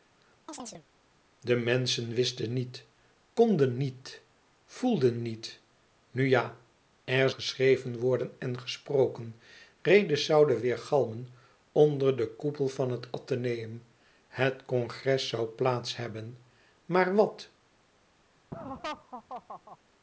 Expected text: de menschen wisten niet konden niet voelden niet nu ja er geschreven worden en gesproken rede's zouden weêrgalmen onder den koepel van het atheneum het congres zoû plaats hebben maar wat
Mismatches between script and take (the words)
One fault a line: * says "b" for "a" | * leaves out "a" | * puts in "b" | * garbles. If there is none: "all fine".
all fine